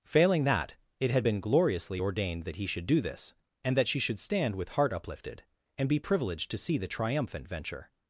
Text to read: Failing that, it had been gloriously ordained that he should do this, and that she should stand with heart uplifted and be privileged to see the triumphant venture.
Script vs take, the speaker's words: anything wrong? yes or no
no